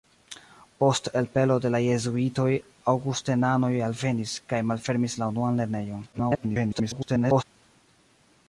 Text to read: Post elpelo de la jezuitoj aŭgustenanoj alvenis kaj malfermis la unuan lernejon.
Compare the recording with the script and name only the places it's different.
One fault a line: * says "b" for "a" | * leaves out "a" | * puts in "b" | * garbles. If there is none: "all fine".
* garbles